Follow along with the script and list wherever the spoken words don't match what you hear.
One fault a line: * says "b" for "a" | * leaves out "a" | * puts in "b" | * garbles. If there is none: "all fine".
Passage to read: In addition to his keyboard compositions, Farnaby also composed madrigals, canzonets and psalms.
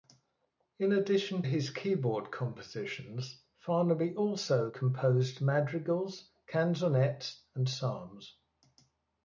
* leaves out "to"